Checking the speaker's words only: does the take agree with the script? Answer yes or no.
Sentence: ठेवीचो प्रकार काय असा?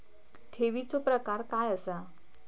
yes